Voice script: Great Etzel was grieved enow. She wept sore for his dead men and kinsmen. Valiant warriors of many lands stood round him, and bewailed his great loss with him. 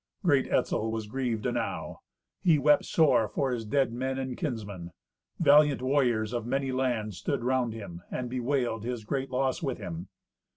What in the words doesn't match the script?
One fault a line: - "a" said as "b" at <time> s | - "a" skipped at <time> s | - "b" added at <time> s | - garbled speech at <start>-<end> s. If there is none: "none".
- "She" said as "He" at 2.4 s